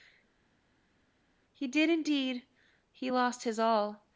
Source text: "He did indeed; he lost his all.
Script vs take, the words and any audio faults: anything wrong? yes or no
no